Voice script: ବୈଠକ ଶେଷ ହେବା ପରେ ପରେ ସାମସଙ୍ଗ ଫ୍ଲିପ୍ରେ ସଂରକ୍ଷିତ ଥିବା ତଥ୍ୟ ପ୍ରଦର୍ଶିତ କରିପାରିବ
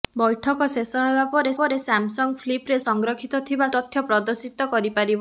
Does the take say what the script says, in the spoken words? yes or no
yes